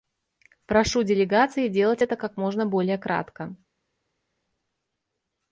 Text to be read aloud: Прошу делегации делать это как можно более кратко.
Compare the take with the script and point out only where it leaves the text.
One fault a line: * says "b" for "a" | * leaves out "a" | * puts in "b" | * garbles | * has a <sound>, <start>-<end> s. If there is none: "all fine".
all fine